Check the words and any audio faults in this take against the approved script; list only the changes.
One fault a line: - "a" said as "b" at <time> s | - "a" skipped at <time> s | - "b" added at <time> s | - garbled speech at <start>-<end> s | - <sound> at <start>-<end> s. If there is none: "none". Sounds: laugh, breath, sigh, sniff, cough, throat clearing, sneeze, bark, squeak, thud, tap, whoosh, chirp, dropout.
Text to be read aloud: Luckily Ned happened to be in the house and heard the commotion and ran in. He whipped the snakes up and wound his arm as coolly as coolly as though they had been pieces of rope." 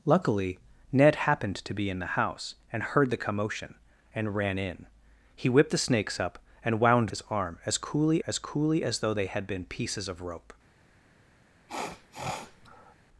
- sniff at 11.7-13.0 s